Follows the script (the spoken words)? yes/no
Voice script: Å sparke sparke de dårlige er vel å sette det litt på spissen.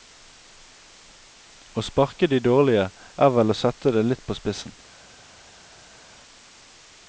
no